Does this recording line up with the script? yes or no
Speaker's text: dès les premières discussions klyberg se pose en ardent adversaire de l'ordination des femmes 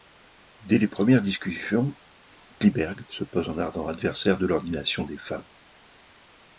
yes